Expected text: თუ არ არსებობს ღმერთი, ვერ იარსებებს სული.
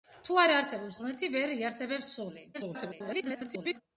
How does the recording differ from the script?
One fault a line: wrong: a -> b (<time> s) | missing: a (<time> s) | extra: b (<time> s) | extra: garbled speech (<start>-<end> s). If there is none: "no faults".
extra: garbled speech (2.5-3.8 s)